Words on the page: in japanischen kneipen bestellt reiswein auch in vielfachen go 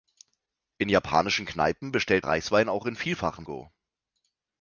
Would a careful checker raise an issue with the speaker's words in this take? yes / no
no